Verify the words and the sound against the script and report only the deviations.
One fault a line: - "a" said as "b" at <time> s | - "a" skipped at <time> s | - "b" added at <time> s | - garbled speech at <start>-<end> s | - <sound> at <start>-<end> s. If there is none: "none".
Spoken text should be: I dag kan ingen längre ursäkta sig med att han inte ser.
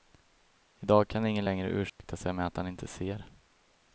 - dropout at 1.9-2.0 s